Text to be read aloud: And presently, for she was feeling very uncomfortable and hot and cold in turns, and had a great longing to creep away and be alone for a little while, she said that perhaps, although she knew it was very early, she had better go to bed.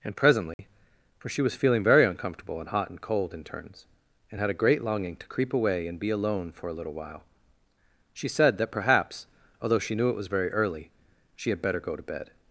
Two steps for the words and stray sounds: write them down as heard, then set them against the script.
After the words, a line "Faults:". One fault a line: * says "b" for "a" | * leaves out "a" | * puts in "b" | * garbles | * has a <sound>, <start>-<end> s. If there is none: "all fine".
And presently, for she was feeling very uncomfortable and hot and cold in turns, and had a great longing to creep away and be alone for a little while, she said that perhaps, although she knew it was very early, she had better go to bed.
Faults:
* has a dropout, 0.5-0.6 s